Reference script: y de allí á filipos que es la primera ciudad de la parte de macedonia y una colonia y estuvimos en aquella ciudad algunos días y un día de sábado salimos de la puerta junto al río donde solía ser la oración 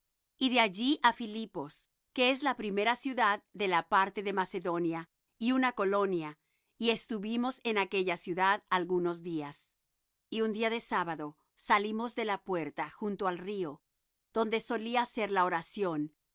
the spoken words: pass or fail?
pass